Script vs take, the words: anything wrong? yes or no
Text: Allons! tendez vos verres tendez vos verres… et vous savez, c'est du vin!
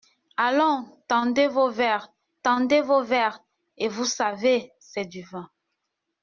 no